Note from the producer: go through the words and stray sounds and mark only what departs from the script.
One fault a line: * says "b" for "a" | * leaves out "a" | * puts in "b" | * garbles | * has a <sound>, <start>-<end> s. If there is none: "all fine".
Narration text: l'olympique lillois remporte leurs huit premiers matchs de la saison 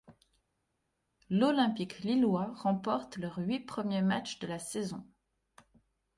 all fine